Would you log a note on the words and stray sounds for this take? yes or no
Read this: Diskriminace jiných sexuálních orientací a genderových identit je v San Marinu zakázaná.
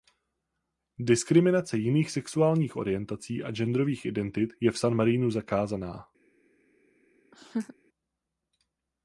yes